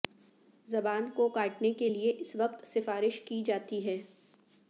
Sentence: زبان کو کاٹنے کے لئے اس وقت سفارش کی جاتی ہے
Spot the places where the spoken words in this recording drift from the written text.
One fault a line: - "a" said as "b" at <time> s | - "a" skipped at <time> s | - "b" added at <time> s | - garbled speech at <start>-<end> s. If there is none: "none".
none